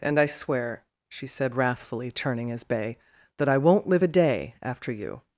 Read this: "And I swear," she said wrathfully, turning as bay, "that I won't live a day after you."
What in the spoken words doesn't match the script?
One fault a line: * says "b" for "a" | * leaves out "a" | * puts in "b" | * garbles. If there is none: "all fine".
all fine